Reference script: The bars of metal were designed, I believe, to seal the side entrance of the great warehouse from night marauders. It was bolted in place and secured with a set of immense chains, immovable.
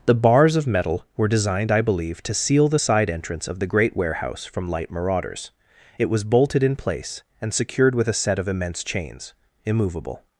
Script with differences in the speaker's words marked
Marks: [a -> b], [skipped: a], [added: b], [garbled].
The bars of metal were designed, I believe, to seal the side entrance of the great warehouse from [night -> light] marauders. It was bolted in place and secured with a set of immense chains, immovable.